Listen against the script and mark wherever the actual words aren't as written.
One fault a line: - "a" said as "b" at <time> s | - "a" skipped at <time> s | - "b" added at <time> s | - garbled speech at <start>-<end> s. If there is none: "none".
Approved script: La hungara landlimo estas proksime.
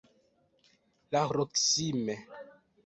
- "hungara landlimo estas" skipped at 1.2 s